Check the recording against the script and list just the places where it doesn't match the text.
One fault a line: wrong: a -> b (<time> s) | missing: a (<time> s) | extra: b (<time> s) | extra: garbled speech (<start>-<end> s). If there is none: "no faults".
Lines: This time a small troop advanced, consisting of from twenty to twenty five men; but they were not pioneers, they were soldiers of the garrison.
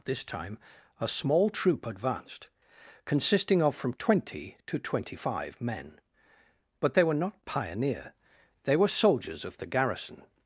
wrong: pioneers -> pioneer (7.4 s)